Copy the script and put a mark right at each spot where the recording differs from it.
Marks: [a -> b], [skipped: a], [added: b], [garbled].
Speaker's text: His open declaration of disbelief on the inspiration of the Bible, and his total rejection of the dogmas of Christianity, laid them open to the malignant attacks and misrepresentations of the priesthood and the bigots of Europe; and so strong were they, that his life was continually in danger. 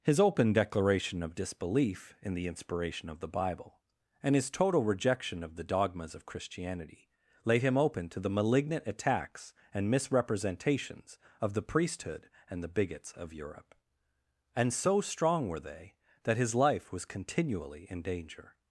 His open declaration of disbelief [on -> in] the inspiration of the Bible, and his total rejection of the dogmas of Christianity, laid [them -> him] open to the malignant attacks and misrepresentations of the priesthood and the bigots of Europe; and so strong were they, that his life was continually in danger.